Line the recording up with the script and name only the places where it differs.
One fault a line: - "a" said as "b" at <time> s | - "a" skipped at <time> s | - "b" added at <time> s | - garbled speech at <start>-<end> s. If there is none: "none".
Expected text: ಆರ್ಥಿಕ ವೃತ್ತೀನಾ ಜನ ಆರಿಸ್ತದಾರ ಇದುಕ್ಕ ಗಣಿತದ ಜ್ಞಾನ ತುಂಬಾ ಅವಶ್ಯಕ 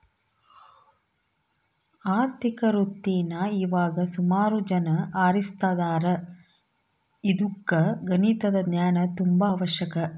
- "ಇವಾಗ ಸುಮಾರು" added at 3.6 s